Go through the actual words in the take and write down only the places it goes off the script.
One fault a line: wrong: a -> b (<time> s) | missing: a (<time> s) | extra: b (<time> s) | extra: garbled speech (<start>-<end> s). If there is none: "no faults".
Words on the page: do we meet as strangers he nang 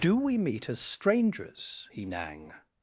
no faults